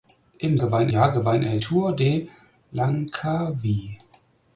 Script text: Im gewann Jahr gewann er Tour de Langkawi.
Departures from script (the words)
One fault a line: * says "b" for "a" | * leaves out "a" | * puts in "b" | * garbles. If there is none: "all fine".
all fine